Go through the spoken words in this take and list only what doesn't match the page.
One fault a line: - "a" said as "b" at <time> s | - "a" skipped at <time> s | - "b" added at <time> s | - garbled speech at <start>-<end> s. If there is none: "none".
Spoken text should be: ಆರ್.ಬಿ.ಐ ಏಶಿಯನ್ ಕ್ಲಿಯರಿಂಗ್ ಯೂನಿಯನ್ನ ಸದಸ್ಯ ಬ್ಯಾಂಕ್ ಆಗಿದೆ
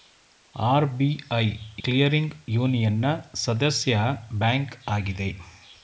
- "ಏಶಿಯನ್" skipped at 1.4 s